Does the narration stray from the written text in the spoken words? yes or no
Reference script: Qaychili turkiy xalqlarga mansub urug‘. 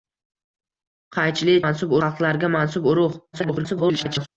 yes